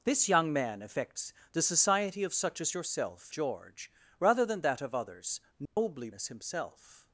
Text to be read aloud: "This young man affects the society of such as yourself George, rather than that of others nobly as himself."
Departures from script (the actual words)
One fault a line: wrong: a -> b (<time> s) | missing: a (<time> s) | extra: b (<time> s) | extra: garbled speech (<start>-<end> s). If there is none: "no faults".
no faults